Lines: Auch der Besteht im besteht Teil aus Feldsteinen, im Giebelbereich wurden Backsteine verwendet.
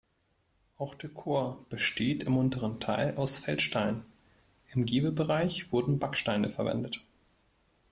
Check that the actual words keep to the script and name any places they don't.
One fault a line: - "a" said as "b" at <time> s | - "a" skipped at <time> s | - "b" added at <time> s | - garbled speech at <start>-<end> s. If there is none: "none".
- "Chor" added at 1.1 s
- "besteht" said as "unteren" at 2.4 s